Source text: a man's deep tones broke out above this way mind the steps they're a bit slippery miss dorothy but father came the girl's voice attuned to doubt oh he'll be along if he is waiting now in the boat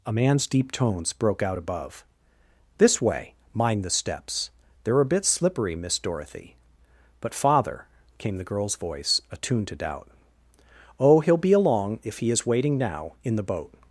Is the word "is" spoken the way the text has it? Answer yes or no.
yes